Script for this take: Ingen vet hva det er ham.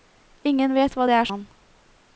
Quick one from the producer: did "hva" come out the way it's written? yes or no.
yes